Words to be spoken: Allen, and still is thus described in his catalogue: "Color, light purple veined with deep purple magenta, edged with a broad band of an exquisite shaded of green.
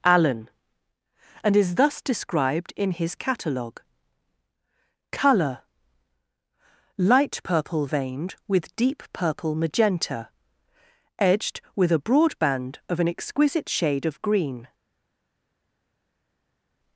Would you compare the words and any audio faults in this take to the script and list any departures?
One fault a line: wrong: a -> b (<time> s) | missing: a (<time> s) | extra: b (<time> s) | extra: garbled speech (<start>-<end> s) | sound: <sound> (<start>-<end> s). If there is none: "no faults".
missing: still (1.6 s)
wrong: shaded -> shade (13.7 s)